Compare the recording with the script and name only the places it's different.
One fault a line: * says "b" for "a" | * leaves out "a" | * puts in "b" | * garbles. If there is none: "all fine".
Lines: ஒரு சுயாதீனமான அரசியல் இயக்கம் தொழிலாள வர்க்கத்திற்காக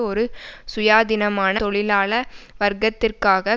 * leaves out "அரசியல் இயக்கம்"